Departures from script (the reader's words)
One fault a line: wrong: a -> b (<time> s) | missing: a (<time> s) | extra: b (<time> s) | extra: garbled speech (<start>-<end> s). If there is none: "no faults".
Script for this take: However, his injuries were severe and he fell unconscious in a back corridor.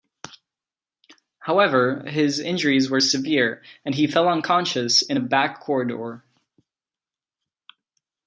no faults